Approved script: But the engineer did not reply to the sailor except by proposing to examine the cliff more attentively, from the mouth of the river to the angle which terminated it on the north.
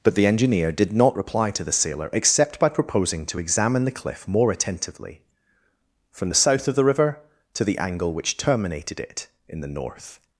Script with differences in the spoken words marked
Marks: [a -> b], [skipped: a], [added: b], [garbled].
But the engineer did not reply to the sailor except by proposing to examine the cliff more attentively, from the [mouth -> south] of the river to the angle which terminated it [on -> in] the north.